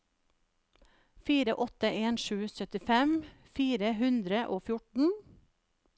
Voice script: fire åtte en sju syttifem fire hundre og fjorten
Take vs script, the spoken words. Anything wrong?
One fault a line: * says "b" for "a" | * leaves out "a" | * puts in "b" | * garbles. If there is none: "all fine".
all fine